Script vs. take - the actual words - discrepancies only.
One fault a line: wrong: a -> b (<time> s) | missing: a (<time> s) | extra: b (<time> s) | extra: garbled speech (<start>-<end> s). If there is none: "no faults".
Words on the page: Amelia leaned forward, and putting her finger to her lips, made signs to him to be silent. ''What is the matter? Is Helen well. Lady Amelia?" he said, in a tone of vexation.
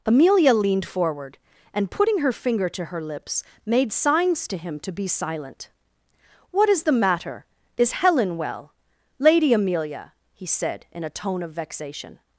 no faults